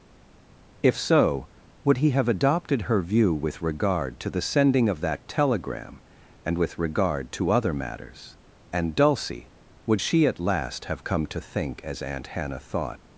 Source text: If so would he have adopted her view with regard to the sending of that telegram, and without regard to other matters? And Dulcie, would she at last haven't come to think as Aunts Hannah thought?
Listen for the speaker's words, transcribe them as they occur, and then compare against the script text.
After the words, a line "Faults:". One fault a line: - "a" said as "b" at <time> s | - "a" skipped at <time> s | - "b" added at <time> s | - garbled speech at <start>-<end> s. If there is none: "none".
If so would he have adopted her view with regard to the sending of that telegram, and with regard to other matters? And Dulcie, would she at last have come to think as Aunt Hannah thought?
Faults:
- "without" said as "with" at 6.6 s
- "haven't" said as "have" at 10.8 s
- "Aunts" said as "Aunt" at 12.0 s